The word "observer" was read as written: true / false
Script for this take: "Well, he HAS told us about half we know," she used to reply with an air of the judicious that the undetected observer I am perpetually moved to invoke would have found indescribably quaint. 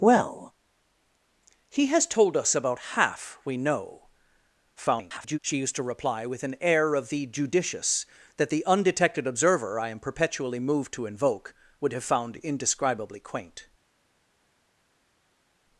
true